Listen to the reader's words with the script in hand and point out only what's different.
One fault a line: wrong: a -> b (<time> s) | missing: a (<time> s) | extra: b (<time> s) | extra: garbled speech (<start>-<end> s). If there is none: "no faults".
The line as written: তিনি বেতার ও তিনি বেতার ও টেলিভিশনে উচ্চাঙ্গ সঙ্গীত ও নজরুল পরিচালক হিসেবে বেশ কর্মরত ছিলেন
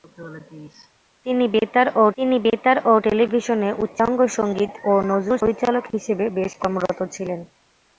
no faults